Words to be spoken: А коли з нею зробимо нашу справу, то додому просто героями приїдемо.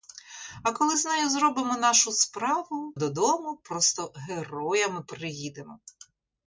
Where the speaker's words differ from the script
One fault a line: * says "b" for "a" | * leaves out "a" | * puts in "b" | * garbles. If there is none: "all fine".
* leaves out "то"